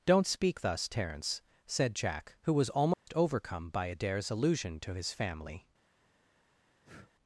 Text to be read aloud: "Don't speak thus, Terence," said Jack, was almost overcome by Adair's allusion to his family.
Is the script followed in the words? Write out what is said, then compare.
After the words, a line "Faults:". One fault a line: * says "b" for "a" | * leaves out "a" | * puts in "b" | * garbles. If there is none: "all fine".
"Don't speak thus, Terence," said Jack, who was almost overcome by Adair's allusion to his family.
Faults:
* puts in "who"